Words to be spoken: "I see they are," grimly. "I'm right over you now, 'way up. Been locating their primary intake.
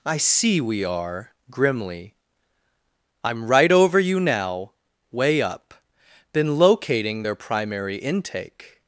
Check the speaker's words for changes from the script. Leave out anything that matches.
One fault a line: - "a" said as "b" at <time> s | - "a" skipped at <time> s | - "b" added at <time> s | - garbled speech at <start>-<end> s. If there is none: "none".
- "they" said as "we" at 0.6 s